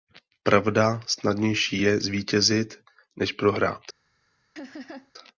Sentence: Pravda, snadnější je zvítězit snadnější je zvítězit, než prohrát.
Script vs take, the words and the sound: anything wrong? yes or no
yes